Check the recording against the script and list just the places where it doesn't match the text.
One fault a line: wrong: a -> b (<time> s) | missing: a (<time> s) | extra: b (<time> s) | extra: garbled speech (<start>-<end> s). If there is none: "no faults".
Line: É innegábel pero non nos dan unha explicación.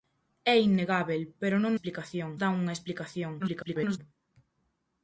wrong: nos -> explicación (1.7 s)
extra: garbled speech (3.4-4.0 s)